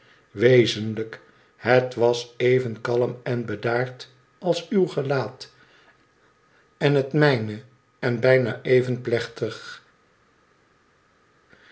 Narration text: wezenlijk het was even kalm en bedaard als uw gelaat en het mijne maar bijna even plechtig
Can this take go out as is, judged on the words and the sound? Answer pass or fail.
fail